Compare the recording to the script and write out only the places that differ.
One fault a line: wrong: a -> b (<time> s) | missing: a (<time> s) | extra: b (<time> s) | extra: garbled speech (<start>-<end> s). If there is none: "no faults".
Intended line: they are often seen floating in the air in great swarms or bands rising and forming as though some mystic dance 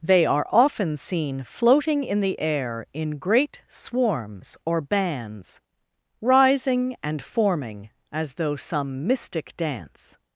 no faults